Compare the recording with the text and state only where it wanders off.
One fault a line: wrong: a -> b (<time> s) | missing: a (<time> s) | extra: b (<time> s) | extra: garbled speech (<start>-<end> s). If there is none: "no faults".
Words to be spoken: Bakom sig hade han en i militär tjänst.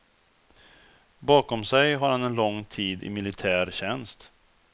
wrong: hade -> har (1.9 s)
extra: lång tid (2.4 s)